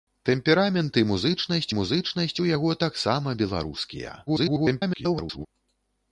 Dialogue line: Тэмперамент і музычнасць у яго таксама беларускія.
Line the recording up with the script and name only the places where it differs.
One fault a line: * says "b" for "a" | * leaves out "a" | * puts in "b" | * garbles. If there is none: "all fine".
* puts in "музычнасць"
* garbles